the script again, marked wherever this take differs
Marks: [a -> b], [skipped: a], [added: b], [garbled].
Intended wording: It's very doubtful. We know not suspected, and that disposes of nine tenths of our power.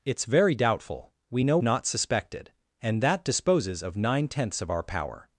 It's very doubtful. We know not suspected, and that disposes of nine tenths of our power.